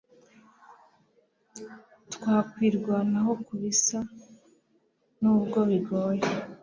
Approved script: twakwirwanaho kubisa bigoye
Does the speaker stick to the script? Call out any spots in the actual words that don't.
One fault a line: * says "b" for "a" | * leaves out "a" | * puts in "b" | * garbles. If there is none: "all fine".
* puts in "nubwo"